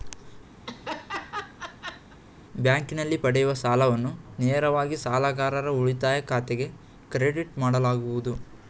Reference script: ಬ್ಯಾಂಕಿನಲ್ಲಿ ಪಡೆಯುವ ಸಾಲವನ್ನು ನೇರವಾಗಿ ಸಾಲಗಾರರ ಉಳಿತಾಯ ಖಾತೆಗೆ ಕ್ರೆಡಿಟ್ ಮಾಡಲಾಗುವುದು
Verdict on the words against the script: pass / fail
pass